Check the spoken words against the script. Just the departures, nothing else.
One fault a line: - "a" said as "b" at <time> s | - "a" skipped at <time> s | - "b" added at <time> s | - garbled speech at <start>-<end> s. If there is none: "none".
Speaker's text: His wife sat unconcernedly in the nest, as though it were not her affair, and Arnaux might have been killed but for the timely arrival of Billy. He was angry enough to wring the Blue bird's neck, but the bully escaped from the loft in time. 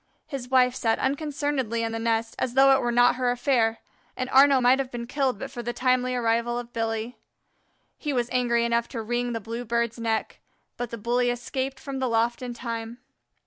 none